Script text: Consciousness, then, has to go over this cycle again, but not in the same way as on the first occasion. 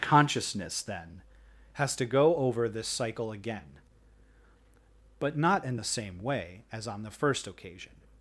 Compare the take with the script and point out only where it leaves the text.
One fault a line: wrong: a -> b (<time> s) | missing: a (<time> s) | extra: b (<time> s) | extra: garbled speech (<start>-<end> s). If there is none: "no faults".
no faults